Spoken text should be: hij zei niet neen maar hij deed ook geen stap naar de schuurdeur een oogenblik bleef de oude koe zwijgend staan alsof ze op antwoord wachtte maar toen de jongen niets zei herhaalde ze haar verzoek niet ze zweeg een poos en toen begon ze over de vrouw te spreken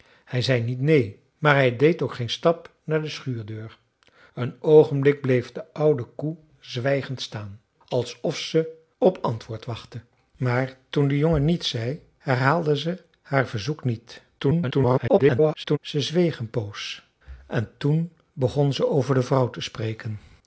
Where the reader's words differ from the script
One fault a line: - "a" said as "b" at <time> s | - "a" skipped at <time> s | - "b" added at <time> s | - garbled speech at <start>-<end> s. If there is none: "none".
- garbled speech at 14.4-15.8 s